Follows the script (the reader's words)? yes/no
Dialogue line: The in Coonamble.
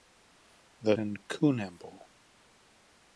yes